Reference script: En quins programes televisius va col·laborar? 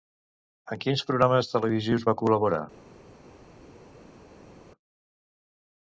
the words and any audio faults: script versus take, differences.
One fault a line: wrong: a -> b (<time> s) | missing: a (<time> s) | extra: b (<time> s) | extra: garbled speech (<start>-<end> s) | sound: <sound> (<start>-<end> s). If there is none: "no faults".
no faults